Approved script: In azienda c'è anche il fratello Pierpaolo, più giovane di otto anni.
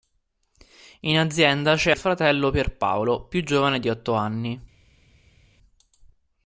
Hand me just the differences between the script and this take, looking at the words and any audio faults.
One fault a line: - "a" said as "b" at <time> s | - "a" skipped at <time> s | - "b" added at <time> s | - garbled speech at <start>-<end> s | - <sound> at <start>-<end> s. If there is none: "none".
- "anche" skipped at 1.9 s